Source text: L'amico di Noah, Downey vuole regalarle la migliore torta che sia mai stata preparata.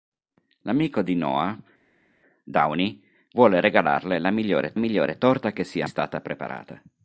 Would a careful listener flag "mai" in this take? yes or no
yes